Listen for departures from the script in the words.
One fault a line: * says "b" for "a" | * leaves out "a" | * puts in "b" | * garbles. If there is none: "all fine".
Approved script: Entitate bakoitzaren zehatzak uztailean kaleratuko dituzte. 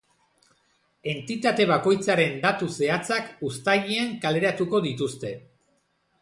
* puts in "datu"